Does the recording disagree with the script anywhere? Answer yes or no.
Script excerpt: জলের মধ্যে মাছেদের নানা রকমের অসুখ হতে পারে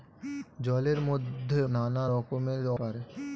yes